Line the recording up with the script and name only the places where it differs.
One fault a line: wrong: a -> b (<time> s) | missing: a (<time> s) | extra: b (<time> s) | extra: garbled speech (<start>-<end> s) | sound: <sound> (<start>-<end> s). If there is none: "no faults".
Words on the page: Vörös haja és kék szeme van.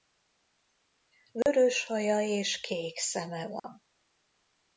sound: dropout (1.4-1.5 s)
sound: dropout (3.6-3.6 s)